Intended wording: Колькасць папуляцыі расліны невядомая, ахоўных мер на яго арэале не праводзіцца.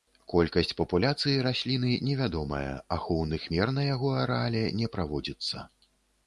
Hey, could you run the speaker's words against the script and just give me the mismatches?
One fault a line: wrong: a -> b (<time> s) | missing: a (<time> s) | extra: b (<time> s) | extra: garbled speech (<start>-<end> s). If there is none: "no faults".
no faults